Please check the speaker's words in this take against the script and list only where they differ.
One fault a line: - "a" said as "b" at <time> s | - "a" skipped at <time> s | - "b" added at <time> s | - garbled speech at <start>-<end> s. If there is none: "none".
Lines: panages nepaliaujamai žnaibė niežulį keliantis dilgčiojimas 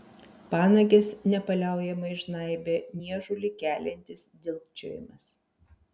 none